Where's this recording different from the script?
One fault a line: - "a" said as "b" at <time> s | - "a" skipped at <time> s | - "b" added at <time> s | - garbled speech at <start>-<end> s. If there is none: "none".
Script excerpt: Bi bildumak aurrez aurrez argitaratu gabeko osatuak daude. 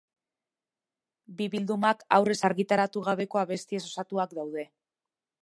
- "aurrez" skipped at 2.4 s
- "abestiez" added at 3.4 s